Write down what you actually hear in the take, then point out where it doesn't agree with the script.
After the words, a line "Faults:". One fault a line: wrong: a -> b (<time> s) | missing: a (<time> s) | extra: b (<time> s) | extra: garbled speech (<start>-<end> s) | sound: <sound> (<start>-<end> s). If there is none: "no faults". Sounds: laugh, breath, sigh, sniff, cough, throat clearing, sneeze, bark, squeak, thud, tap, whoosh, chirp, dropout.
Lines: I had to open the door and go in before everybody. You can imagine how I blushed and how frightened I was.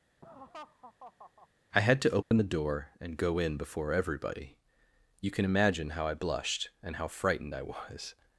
I had to open the door and go in before everybody. You can imagine how I blushed and how frightened I was.
Faults:
sound: laugh (0.2-1.5 s)
sound: dropout (2.2-2.3 s)